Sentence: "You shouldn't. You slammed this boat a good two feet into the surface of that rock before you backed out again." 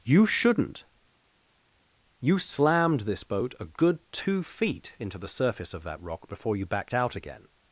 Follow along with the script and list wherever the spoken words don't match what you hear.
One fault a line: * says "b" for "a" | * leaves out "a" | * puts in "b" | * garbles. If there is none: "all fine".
all fine